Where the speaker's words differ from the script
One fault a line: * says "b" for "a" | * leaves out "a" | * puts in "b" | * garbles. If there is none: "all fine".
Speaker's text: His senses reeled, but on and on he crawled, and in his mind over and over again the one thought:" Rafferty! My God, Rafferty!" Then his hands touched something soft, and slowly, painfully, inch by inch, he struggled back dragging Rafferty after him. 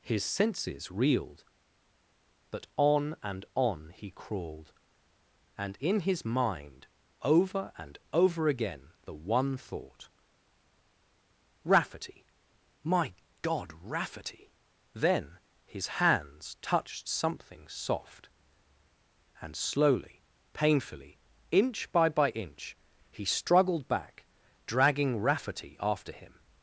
* puts in "by"